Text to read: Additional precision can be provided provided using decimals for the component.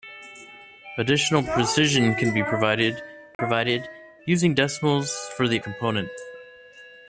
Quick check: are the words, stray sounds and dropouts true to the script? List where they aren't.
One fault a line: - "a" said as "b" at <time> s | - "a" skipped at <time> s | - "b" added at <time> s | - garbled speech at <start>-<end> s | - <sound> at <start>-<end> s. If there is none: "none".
- dropout at 3.3-3.4 s